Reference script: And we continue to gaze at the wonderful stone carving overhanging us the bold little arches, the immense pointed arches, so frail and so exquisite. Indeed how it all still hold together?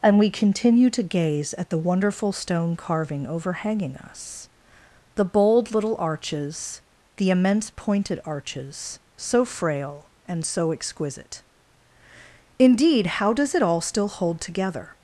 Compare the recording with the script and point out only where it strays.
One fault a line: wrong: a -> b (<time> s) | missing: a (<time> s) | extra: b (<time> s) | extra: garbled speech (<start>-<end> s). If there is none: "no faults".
extra: does (13.3 s)